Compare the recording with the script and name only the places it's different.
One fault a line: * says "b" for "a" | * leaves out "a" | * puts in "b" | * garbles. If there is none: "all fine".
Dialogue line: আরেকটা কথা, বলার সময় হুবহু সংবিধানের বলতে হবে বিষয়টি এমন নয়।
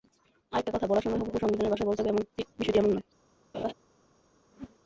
* puts in "ভাষায়"